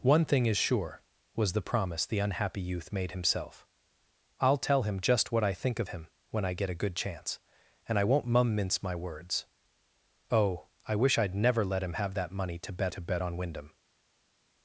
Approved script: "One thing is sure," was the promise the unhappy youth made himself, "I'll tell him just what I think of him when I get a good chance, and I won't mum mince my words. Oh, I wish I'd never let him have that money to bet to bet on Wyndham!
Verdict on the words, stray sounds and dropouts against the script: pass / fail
pass